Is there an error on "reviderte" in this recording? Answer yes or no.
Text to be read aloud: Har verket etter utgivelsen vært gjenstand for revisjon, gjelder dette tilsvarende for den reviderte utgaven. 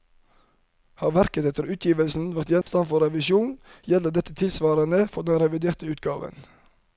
no